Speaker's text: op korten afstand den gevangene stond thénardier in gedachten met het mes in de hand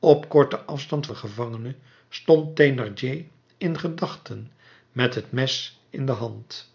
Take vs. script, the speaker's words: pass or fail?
pass